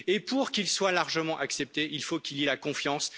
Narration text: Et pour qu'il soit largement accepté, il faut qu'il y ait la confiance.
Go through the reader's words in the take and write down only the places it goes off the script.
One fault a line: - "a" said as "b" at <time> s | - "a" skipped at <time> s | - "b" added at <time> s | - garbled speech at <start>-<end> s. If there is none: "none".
none